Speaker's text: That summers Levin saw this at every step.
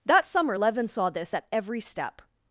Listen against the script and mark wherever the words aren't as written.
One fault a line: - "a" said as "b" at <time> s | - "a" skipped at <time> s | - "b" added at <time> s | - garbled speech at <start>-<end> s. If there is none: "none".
- "summers" said as "summer" at 0.3 s